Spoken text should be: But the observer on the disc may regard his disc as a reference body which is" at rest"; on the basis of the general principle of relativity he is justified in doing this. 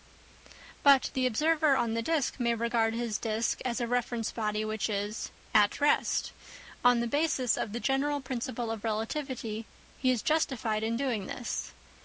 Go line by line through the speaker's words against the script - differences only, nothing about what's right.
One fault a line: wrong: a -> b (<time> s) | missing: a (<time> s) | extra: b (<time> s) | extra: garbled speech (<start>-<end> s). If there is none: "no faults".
no faults